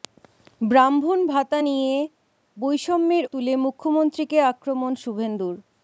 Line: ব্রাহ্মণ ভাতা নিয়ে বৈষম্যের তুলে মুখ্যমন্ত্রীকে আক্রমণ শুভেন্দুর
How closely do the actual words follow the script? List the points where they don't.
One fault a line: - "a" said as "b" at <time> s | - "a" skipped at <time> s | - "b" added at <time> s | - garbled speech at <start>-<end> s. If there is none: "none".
none